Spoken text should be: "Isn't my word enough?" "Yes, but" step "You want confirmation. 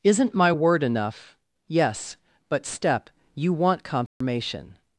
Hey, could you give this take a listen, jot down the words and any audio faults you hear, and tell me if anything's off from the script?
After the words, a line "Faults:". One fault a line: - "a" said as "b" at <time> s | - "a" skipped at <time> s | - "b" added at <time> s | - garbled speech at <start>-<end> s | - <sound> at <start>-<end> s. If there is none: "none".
"Isn't my word enough?" "Yes, but" step "You want confirmation.
Faults:
- dropout at 4.1-4.2 s